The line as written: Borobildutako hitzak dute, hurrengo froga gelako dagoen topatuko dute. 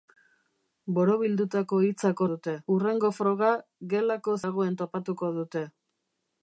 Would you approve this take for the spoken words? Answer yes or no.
yes